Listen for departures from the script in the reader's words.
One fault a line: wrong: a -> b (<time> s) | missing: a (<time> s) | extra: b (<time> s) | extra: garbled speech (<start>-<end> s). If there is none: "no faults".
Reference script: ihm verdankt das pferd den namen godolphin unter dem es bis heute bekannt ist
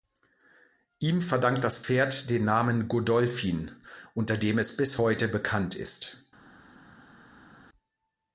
no faults